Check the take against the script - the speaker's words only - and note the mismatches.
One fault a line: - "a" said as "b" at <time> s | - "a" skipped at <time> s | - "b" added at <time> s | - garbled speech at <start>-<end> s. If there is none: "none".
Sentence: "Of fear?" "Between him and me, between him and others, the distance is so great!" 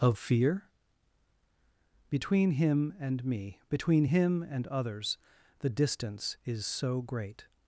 none